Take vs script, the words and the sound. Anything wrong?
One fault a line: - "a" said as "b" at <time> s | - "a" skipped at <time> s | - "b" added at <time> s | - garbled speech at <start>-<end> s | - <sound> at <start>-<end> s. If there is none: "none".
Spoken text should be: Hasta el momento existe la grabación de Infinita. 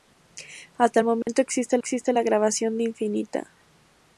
- dropout at 1.2-1.3 s
- "existe" added at 1.8 s